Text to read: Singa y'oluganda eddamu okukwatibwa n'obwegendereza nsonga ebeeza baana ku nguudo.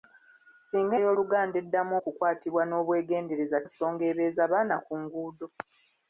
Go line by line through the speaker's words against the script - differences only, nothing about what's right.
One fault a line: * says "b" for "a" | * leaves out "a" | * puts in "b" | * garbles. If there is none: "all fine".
all fine